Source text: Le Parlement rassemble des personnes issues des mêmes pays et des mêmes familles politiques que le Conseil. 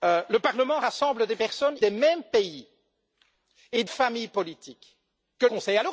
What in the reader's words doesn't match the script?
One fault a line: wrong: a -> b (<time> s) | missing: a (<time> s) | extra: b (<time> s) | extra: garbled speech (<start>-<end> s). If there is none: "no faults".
missing: issues (1.8 s)
missing: des mêmes (3.8 s)
missing: le (5.5 s)